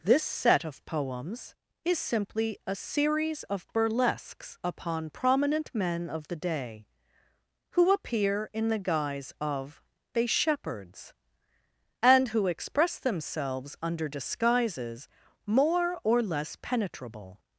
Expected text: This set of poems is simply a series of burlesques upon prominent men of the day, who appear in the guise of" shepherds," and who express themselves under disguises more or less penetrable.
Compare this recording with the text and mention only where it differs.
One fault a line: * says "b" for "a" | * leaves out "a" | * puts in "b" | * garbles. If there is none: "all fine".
* puts in "they"